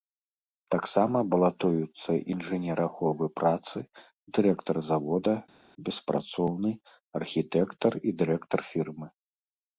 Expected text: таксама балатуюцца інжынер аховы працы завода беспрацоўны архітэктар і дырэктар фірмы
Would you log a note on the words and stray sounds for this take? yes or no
yes